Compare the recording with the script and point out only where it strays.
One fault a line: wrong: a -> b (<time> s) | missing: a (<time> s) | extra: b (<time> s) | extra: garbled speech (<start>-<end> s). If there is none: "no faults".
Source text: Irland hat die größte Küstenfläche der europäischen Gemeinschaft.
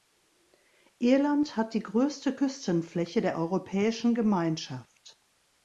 no faults